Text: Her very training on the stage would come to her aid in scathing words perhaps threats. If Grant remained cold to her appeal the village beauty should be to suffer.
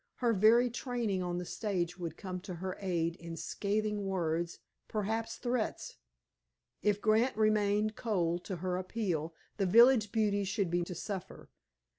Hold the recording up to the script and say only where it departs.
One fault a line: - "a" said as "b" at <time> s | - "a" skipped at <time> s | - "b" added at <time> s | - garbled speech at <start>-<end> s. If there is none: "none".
none